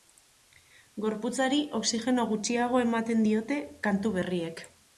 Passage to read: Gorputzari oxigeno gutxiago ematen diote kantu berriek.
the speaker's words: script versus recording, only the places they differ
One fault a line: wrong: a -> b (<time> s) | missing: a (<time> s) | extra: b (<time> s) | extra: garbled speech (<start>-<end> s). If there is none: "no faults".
no faults